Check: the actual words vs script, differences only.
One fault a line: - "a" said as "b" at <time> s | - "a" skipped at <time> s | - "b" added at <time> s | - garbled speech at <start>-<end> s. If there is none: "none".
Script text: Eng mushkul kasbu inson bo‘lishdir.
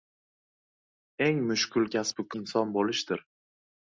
none